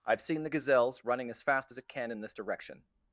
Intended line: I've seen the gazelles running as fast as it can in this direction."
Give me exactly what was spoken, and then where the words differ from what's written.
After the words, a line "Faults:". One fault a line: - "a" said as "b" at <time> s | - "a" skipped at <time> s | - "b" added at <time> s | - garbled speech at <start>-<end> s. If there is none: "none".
I've seen the gazelles running as fast as it can in this direction."
Faults:
none